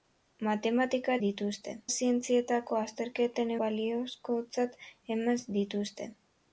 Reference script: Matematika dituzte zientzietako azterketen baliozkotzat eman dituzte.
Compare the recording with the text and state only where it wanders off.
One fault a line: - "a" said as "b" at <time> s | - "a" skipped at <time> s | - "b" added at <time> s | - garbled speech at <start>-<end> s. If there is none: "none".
none